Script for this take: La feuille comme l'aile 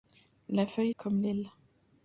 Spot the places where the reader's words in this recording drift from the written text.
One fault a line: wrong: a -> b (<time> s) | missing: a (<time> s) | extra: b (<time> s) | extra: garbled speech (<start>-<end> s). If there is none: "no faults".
no faults